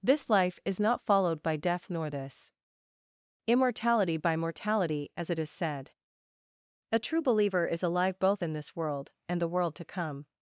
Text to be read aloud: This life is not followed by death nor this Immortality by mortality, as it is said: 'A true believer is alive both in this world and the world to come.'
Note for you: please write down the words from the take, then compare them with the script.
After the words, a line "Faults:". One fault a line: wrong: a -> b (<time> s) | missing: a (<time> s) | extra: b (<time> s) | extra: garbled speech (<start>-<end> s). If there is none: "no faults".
This life is not followed by death nor this Immortality by mortality, as it is said: 'A true believer is alive both in this world and the world to come.'
Faults:
no faults